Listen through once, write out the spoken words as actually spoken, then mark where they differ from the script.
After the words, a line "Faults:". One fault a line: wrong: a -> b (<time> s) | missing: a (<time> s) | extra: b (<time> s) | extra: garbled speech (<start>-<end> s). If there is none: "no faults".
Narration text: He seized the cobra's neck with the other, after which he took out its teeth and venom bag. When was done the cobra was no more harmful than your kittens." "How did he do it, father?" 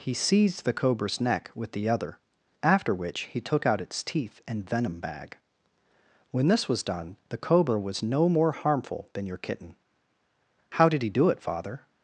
He seized the cobra's neck with the other, after which he took out its teeth and venom bag. When this was done the cobra was no more harmful than your kitten." "How did he do it, father?"
Faults:
extra: this (6.5 s)
wrong: kittens -> kitten (9.4 s)